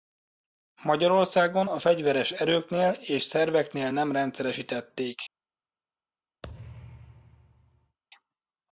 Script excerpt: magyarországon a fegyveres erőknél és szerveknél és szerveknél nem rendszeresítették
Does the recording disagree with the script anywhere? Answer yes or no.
yes